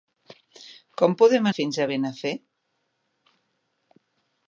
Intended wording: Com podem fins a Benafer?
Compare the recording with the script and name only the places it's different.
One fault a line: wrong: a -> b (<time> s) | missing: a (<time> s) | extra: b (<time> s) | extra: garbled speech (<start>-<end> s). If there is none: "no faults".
no faults